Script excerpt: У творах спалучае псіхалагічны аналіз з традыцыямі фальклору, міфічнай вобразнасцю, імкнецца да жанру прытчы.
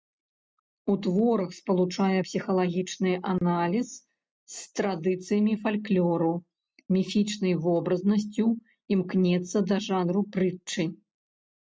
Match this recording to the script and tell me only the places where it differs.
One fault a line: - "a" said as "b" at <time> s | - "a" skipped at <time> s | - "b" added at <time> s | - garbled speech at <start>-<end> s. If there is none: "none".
none